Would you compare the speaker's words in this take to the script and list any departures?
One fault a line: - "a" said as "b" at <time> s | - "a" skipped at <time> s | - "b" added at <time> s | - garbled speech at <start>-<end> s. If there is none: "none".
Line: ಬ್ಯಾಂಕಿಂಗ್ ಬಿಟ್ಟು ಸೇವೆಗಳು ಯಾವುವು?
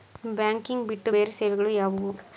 - "ಬೇರೆ" added at 1.1 s